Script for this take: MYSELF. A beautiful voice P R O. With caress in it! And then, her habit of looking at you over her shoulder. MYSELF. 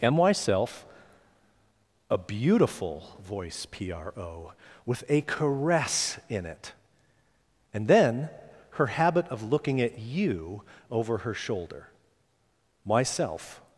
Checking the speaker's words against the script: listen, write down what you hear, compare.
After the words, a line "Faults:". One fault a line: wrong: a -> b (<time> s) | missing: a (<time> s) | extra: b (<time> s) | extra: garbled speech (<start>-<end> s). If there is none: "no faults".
MYSELF. A beautiful voice P R O. With a caress in it! And then, her habit of looking at you over her shoulder. MYSELF.
Faults:
extra: a (5.1 s)